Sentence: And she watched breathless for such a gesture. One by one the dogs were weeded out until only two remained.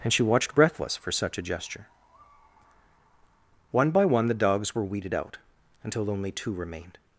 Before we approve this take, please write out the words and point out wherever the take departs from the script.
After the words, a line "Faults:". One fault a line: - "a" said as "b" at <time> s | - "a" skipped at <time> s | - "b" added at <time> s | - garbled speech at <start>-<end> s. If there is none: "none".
And she watched breathless for such a gesture. One by one the dogs were weeded out until only two remained.
Faults:
none